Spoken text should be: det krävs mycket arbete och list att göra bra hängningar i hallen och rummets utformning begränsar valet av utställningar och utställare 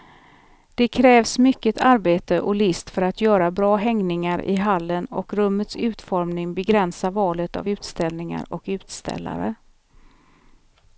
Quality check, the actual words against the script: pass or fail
fail